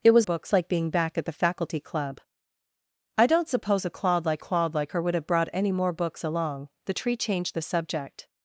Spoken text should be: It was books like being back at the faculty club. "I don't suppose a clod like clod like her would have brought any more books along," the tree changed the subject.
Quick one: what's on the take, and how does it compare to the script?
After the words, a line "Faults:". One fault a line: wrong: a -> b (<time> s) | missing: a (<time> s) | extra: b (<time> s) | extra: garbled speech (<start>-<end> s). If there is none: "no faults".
It was books like being back at the faculty club. "I don't suppose a clod like clod like her would have brought any more books along," the tree changed the subject.
Faults:
no faults